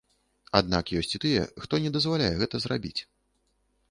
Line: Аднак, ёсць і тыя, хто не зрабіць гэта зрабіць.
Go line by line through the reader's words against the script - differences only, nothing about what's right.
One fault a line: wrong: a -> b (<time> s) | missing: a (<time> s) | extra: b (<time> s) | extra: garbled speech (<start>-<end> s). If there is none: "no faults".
wrong: зрабіць -> дазваляе (2.0 s)